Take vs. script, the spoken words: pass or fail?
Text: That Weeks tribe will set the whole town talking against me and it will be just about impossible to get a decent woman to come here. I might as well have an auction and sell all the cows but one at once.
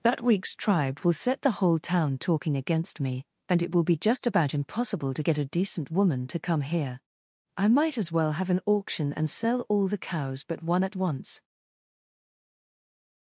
pass